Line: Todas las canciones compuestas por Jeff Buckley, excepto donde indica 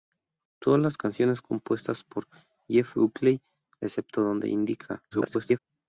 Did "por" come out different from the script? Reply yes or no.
no